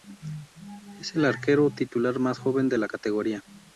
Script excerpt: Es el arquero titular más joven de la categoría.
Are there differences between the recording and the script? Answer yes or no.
no